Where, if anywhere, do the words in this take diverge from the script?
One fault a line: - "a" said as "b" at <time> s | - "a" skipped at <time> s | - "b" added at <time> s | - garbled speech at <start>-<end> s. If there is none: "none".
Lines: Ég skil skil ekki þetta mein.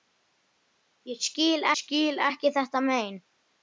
none